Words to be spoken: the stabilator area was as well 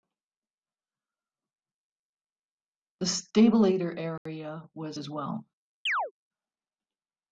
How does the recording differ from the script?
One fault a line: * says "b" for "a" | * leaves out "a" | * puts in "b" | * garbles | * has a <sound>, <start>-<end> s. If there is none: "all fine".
* has a dropout, 4.2-4.3 s
* has a chirp, 5.9-6.1 s